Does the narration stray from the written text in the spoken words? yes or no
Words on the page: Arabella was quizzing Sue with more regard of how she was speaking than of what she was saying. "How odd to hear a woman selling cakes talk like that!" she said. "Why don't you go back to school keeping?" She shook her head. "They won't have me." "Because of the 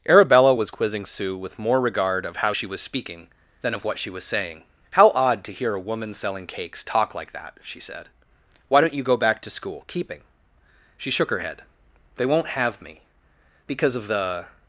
no